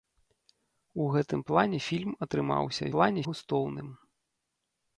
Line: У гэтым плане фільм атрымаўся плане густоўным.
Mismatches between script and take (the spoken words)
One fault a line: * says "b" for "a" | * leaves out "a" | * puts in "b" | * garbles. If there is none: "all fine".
all fine